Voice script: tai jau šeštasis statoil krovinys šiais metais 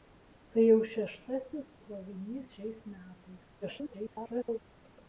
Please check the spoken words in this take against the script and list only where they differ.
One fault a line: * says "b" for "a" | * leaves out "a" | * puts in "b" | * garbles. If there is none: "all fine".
* leaves out "statoil"
* garbles